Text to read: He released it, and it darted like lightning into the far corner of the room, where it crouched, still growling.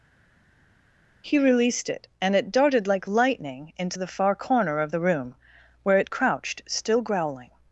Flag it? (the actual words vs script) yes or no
no